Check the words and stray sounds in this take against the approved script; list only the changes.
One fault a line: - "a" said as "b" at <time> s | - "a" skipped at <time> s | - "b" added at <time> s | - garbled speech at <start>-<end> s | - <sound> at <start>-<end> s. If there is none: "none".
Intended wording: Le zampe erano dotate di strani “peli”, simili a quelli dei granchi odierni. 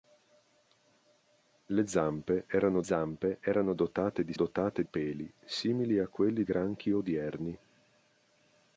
- "zampe erano" added at 2.8 s
- "strani" said as "dotate" at 4.3 s
- "dei" skipped at 6.4 s